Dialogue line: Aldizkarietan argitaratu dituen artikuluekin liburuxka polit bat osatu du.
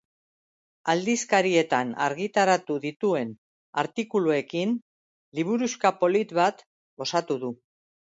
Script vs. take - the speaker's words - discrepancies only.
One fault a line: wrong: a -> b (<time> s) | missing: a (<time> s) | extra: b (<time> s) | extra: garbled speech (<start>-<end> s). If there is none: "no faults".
no faults